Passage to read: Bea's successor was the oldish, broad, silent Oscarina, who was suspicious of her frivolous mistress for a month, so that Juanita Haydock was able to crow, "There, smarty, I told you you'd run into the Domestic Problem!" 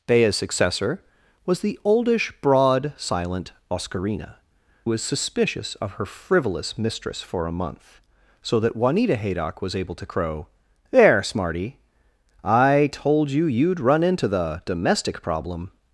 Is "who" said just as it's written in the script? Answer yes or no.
no